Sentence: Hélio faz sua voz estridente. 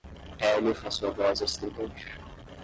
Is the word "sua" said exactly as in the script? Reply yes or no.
yes